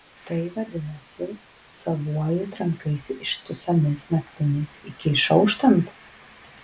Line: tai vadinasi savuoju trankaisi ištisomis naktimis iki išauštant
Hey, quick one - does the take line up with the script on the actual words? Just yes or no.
yes